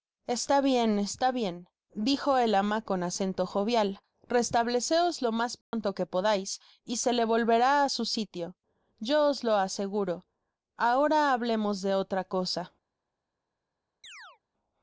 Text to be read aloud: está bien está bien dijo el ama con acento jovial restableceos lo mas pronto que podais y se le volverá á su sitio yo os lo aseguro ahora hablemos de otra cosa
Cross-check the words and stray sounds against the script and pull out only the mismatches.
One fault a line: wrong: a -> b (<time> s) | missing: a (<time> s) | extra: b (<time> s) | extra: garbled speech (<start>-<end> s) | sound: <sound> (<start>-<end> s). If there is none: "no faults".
sound: dropout (5.6-5.7 s)
sound: chirp (14.0-14.4 s)